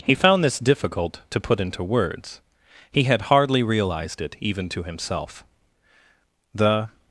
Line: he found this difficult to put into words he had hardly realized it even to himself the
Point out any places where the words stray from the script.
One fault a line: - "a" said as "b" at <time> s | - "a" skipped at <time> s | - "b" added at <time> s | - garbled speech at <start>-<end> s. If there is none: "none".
none